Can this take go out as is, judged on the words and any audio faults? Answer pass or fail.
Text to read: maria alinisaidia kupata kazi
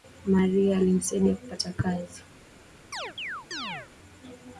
fail